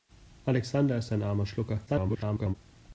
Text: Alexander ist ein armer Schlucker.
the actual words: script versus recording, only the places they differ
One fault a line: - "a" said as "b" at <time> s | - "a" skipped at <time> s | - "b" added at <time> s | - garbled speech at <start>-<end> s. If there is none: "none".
- garbled speech at 1.9-2.6 s